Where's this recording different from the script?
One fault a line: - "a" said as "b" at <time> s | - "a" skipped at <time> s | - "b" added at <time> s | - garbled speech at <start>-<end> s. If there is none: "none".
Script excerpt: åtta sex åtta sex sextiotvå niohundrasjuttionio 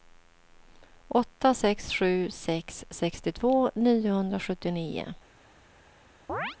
- "åtta" said as "sju" at 1.9 s